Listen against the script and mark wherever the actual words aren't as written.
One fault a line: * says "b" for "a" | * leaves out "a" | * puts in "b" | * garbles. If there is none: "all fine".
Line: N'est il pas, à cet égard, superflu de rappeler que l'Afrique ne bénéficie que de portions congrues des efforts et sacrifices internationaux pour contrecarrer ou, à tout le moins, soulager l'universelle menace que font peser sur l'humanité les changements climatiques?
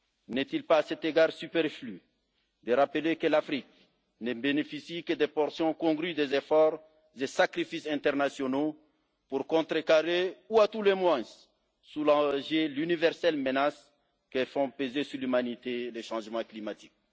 all fine